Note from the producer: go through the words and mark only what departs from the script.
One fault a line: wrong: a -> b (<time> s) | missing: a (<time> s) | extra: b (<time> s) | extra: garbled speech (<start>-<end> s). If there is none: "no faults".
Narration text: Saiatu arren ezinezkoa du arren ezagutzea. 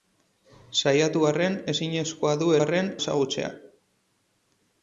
no faults